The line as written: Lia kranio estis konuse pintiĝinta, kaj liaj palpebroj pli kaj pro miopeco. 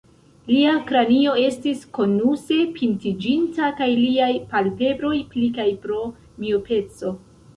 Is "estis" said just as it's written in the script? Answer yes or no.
yes